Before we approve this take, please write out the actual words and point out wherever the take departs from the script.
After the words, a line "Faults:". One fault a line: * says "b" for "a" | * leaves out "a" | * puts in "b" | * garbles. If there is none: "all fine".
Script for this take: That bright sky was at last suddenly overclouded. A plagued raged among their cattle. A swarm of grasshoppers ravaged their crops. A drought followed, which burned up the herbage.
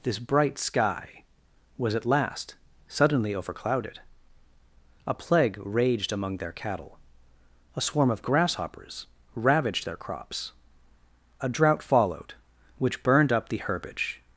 This bright sky was at last suddenly overclouded. A plague raged among their cattle. A swarm of grasshoppers ravaged their crops. A drought followed, which burned up the herbage.
Faults:
* says "This" for "That"
* says "plague" for "plagued"